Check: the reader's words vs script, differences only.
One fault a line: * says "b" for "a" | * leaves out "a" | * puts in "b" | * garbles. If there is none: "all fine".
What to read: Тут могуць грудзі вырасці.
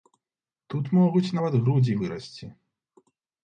* puts in "нават"